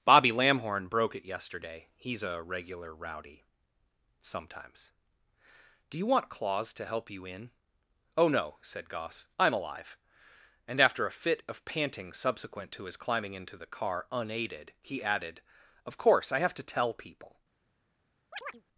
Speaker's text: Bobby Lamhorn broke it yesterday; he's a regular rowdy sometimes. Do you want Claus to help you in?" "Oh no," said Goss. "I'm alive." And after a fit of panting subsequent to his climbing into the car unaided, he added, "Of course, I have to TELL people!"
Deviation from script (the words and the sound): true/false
true